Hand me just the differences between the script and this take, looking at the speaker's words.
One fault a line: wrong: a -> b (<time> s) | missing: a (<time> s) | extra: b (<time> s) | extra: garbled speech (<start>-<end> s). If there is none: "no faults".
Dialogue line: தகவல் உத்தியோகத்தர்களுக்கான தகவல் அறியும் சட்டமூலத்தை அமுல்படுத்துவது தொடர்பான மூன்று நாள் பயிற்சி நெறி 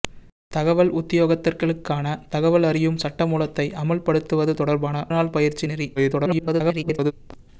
missing: மூன்று (5.0 s)
extra: garbled speech (6.0-7.1 s)